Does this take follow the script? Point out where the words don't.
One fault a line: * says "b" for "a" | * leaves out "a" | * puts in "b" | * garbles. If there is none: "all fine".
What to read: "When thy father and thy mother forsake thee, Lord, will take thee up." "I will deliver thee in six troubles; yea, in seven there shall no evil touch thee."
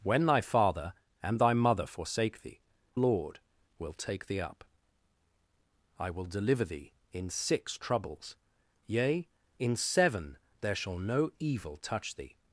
all fine